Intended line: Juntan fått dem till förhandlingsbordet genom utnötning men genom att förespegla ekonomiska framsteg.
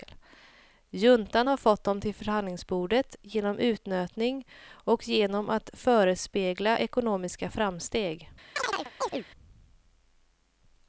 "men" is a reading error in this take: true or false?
true